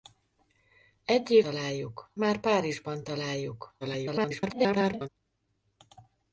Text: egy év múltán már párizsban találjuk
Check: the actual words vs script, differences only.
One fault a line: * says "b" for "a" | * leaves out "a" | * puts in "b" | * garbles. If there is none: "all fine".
* says "találjuk" for "múltán"
* garbles